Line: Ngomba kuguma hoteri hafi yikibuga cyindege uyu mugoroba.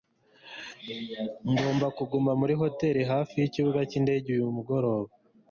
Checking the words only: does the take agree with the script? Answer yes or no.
no